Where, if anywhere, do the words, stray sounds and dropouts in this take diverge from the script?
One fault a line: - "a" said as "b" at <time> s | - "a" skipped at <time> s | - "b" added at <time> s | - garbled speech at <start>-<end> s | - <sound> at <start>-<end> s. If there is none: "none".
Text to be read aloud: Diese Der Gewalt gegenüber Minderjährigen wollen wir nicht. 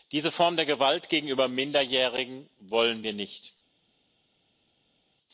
- "Form" added at 0.3 s